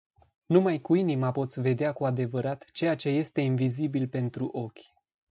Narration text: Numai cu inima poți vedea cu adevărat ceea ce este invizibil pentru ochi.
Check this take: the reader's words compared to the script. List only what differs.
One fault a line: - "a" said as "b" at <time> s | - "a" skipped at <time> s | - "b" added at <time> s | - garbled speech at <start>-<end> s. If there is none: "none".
none